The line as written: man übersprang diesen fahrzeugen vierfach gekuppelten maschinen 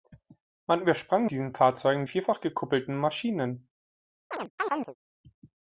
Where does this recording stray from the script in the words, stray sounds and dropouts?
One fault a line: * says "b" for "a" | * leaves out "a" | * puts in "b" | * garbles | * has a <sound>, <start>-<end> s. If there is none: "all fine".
* has a chirp, 4.3-5.0 s